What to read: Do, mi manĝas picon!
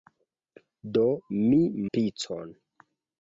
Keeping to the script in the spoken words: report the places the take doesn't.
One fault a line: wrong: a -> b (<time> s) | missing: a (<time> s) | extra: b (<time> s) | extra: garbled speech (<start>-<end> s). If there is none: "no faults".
missing: manĝas (1.6 s)